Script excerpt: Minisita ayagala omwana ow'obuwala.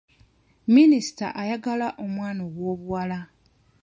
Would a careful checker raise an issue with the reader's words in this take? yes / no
no